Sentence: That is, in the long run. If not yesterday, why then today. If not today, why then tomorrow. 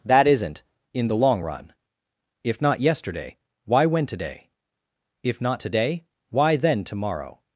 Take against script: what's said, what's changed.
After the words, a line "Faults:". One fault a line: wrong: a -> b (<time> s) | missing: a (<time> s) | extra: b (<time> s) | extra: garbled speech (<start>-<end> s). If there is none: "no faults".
That isn't, in the long run. If not yesterday, why when today. If not today, why then tomorrow.
Faults:
wrong: is -> isn't (0.3 s)
wrong: then -> when (3.9 s)